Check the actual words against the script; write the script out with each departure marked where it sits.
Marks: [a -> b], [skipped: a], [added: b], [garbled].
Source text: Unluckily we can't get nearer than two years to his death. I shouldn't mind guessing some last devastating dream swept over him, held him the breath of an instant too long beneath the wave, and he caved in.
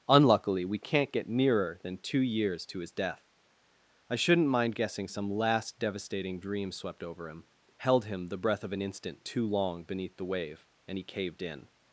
Unluckily we can't get nearer than two years to his death. I shouldn't mind guessing some last devastating dream swept over him, held him the breath of an instant too long beneath the wave, and he caved in.